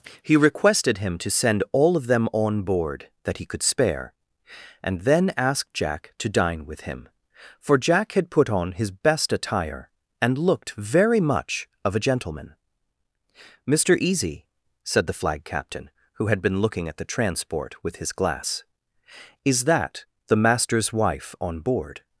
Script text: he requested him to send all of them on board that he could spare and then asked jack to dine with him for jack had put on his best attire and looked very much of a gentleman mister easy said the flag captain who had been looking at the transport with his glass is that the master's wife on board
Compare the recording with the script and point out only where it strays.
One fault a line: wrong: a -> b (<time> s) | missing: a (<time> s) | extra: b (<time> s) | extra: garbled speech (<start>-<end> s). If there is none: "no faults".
no faults